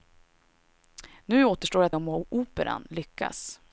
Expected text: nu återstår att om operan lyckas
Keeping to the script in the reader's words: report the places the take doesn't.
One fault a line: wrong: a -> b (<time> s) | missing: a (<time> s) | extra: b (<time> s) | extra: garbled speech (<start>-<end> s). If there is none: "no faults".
no faults